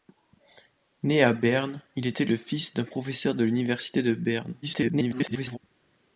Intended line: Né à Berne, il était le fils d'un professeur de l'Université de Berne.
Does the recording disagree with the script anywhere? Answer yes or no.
yes